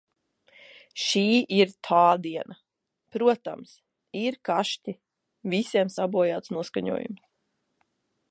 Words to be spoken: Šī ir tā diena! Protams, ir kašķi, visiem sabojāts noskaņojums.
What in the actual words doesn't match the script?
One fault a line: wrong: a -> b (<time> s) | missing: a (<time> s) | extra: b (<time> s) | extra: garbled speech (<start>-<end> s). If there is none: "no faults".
no faults